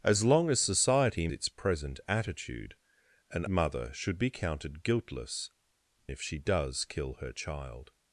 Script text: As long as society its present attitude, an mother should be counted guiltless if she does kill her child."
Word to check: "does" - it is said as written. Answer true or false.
true